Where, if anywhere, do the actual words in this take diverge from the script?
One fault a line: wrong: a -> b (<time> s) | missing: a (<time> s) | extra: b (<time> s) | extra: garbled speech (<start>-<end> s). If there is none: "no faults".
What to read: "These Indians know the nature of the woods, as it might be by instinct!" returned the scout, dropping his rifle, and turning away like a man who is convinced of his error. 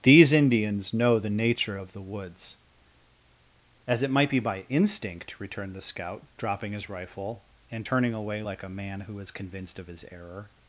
no faults